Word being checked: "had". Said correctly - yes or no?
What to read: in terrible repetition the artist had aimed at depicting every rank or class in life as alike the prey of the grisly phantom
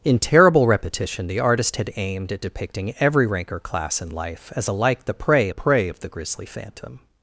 yes